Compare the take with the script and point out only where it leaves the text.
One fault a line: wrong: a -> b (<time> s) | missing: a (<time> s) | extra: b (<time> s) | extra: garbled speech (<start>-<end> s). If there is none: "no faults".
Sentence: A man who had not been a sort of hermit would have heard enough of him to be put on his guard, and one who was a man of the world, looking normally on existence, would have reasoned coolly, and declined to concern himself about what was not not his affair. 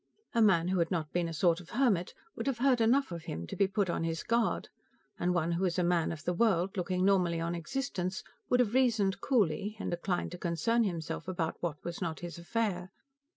missing: not (12.2 s)